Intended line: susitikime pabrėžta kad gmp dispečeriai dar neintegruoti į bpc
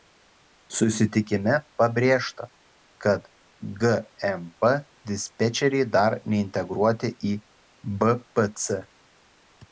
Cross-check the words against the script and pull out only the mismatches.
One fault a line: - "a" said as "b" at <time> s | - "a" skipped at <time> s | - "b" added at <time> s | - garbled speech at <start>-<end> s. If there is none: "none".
none